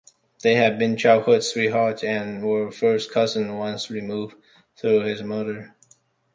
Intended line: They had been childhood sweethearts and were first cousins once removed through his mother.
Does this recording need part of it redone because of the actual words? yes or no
no